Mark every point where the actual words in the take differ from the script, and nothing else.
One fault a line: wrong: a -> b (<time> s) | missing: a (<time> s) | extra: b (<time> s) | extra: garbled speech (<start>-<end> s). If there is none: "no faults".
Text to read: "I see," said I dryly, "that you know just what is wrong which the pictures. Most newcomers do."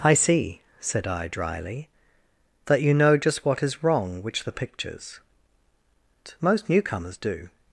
no faults